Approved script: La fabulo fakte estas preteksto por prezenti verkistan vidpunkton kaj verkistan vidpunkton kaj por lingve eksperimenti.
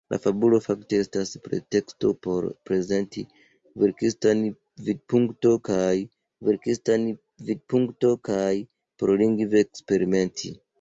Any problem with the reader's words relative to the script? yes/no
no